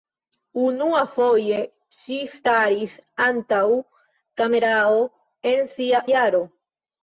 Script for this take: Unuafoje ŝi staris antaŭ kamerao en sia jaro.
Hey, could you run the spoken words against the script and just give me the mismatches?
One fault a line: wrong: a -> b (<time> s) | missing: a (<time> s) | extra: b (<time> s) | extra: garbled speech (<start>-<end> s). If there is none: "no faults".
no faults